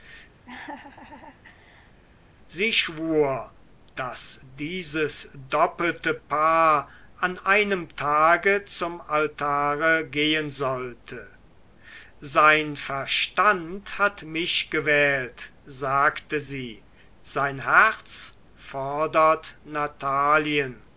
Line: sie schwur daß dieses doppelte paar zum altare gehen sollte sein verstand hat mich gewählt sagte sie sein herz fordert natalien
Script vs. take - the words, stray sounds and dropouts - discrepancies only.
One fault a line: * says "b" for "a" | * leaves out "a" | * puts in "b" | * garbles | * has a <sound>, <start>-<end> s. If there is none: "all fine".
* has a laugh, 0.4-2.0 s
* puts in "an einem tage"